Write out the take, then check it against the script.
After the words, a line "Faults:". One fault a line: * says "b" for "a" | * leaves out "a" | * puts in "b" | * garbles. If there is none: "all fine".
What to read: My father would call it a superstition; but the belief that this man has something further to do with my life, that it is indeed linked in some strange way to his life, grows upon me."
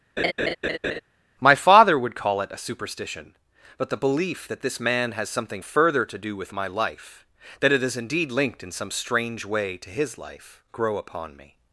My father would call it a superstition; but the belief that this man has something further to do with my life, that it is indeed linked in some strange way to his life, grow upon me."
Faults:
* says "grow" for "grows"